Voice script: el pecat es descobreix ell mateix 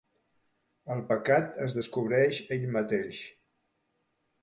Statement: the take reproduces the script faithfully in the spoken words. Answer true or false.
true